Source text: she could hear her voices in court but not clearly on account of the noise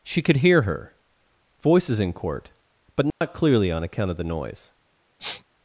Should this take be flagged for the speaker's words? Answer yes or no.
no